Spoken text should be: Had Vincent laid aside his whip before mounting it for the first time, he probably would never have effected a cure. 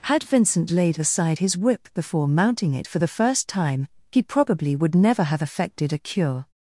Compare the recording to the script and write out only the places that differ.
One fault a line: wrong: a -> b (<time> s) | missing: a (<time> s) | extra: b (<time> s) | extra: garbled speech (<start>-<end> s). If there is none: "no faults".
no faults